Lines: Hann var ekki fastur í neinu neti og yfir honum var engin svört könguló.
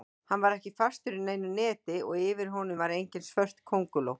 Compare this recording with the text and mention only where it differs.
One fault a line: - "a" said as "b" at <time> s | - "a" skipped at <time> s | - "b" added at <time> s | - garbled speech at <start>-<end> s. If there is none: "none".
none